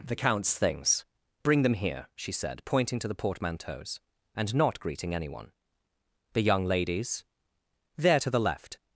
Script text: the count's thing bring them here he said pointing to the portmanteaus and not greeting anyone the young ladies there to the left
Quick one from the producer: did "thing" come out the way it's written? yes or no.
no